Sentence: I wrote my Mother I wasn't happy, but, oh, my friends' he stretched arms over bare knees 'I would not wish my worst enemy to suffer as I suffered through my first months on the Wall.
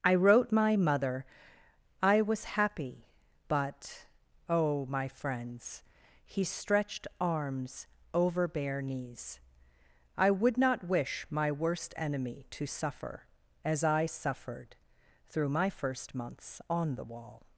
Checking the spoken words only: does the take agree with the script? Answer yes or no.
no